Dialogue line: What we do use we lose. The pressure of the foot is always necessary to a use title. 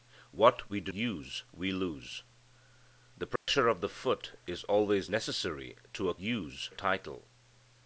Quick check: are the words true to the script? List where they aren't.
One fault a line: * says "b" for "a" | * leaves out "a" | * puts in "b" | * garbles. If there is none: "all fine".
all fine